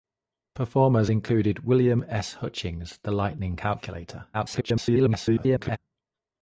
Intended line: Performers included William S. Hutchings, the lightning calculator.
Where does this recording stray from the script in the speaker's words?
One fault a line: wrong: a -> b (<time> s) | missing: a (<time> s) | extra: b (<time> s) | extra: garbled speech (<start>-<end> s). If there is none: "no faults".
extra: garbled speech (4.3-5.8 s)